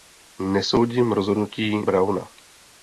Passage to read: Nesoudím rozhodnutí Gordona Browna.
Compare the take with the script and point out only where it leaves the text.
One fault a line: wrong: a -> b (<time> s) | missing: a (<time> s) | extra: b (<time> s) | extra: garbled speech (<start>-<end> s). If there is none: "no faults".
missing: Gordona (1.8 s)